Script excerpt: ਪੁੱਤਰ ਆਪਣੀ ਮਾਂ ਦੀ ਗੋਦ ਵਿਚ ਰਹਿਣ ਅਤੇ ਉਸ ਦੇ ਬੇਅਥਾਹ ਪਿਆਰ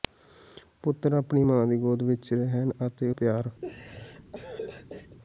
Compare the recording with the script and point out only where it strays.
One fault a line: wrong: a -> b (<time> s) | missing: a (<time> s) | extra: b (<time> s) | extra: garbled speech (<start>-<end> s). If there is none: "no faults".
missing: ਉਸ ਦੇ ਬੇਅਥਾਹ (3.1 s)